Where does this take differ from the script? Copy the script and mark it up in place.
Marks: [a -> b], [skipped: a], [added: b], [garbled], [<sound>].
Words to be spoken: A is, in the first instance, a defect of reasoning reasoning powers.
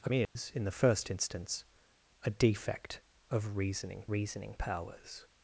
A is, [dropout] in the first instance, a defect of reasoning reasoning powers.